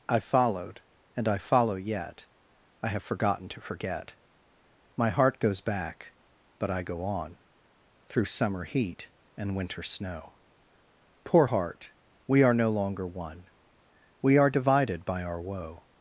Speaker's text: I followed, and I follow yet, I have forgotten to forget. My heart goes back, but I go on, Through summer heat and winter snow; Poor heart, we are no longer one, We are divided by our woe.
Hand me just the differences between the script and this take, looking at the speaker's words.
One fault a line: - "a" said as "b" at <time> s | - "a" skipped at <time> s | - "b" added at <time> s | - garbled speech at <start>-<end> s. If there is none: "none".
none